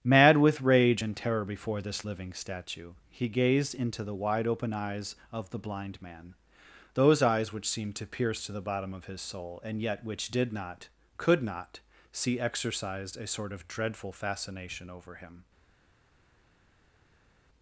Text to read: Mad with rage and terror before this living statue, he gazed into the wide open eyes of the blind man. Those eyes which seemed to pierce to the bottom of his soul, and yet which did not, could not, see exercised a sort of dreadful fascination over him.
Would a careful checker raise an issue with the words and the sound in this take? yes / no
no